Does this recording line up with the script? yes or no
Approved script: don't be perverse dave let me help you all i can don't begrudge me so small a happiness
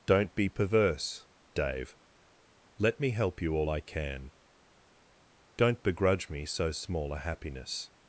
yes